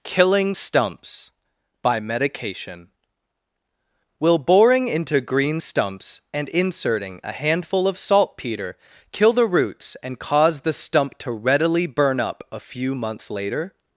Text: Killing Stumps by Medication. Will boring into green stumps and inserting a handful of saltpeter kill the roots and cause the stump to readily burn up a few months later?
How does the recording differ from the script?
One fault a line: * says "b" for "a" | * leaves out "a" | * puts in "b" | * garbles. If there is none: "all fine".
all fine